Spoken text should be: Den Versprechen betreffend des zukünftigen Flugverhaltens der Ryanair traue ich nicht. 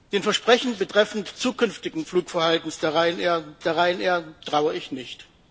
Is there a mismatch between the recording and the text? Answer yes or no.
yes